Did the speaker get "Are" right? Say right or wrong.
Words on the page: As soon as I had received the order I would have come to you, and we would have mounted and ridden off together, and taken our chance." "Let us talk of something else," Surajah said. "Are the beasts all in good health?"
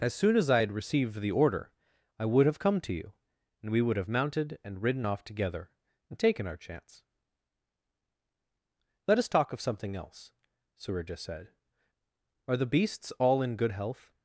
right